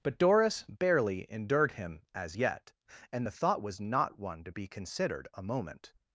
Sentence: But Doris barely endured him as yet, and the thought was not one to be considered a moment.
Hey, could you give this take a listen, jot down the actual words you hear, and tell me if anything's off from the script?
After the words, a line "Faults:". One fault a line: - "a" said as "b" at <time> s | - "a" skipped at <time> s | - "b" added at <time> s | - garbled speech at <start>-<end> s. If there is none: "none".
But Doris barely endured him as yet, and the thought was not one to be considered a moment.
Faults:
none